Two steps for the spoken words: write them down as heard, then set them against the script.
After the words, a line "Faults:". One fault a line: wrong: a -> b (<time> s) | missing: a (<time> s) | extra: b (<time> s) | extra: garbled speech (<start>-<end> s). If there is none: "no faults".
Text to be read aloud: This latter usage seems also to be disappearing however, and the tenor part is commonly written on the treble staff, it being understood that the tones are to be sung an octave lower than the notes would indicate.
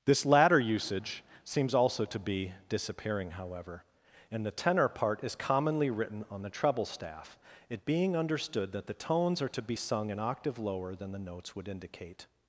This latter usage seems also to be disappearing however, and the tenor part is commonly written on the treble staff, it being understood that the tones are to be sung an octave lower than the notes would indicate.
Faults:
no faults